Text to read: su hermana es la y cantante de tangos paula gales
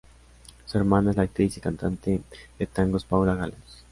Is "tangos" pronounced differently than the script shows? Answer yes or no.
no